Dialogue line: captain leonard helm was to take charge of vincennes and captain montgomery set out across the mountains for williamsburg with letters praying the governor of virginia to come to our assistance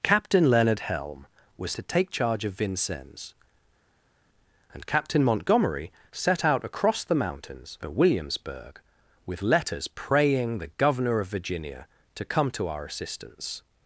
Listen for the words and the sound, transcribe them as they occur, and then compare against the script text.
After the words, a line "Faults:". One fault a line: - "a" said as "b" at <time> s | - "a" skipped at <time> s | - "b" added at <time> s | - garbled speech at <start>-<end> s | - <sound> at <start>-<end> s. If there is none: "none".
captain leonard helm was to take charge of vincennes and captain montgomery set out across the mountains for williamsburg with letters praying the governor of virginia to come to our assistance
Faults:
none